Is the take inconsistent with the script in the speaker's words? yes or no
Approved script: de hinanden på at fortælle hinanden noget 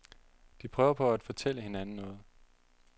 yes